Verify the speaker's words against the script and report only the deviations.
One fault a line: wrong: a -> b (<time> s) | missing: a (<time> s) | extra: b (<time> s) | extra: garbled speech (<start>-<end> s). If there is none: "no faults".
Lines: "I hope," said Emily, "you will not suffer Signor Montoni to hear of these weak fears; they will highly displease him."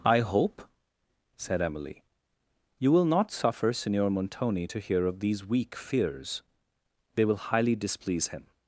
no faults